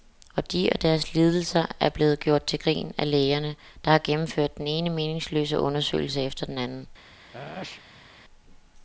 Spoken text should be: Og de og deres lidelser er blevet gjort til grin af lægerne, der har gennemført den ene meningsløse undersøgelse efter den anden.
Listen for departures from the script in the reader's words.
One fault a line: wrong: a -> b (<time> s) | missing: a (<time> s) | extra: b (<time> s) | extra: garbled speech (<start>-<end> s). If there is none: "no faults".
no faults